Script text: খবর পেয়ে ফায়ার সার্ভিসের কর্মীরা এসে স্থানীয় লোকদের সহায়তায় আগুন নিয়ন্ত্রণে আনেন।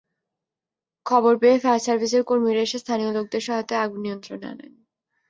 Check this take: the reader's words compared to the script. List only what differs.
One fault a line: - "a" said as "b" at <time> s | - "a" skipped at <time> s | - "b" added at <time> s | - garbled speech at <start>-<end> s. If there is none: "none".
none